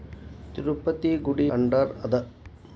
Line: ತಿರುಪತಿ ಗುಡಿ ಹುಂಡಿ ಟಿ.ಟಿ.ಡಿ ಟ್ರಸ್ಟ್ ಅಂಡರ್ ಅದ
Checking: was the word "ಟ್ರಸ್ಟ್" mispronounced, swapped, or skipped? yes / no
yes